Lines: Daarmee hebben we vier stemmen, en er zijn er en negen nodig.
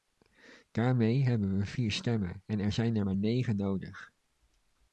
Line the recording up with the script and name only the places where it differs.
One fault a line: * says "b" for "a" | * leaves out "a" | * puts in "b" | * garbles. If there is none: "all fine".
* says "maar" for "en"